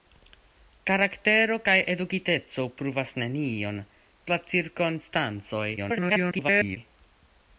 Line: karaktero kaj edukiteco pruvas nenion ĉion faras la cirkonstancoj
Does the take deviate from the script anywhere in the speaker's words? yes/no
yes